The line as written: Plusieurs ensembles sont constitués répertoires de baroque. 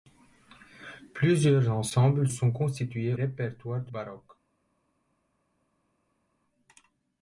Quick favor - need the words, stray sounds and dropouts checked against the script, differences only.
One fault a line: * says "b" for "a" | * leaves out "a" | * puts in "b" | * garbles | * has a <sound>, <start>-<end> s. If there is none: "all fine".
all fine